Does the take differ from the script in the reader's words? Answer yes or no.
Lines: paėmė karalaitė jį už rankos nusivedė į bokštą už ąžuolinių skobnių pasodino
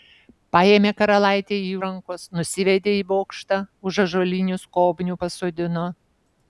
yes